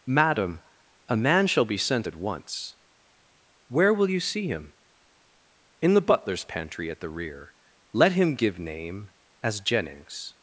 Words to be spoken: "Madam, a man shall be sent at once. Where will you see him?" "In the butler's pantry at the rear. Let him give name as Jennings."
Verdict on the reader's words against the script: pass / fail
pass